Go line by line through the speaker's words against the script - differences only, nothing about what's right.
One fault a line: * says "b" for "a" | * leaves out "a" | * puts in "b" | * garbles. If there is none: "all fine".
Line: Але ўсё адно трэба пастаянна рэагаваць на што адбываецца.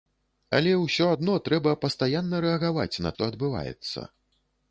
all fine